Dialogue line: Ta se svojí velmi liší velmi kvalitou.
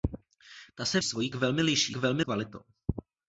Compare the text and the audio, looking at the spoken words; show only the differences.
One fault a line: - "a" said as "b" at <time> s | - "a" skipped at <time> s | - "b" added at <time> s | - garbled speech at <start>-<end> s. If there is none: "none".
none